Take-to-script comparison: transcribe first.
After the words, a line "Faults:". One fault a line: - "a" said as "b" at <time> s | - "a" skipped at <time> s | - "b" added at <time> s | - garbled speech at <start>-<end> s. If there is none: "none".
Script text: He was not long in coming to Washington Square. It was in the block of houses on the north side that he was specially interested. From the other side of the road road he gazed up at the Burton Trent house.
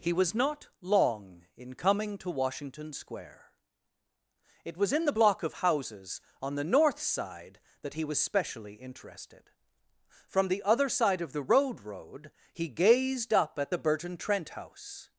He was not long in coming to Washington Square. It was in the block of houses on the north side that he was specially interested. From the other side of the road road he gazed up at the Burton Trent house.
Faults:
none